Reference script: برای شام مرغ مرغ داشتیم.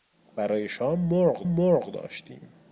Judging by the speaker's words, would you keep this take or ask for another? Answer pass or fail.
pass